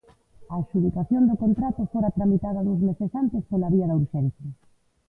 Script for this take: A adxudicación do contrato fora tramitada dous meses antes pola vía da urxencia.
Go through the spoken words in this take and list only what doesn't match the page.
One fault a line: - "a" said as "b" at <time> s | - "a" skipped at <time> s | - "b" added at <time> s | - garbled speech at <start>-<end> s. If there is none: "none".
none